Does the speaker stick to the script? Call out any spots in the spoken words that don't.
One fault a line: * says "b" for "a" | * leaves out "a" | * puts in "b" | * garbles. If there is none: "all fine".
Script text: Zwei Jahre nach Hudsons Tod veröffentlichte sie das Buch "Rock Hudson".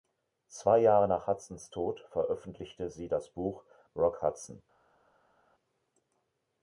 all fine